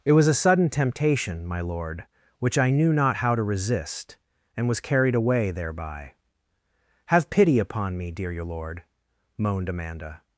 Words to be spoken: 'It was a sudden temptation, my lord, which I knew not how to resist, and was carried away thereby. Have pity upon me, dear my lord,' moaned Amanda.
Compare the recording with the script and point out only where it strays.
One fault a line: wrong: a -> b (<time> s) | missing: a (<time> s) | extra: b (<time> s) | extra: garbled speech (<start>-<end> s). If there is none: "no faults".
wrong: my -> your (8.3 s)